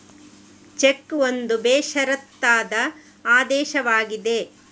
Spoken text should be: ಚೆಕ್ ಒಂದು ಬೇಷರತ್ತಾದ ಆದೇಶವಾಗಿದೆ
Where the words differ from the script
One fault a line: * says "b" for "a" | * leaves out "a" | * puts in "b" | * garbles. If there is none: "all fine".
all fine